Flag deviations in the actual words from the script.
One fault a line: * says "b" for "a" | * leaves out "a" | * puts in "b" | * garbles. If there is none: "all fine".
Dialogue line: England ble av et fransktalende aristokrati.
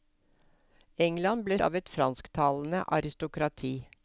all fine